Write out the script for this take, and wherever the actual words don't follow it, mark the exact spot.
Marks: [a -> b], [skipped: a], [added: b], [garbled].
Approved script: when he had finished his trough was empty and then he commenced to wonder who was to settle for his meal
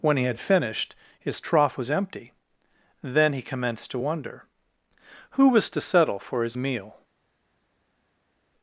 when he had finished his trough was empty [skipped: and] then he commenced to wonder who was to settle for his meal